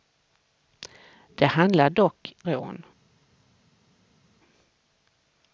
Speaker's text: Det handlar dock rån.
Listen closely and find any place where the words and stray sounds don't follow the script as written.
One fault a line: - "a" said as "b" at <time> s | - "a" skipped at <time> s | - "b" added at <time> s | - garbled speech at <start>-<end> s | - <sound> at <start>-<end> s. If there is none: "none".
none